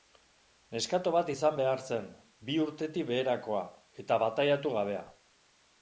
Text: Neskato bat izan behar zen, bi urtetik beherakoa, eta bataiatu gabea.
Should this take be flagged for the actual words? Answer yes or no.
no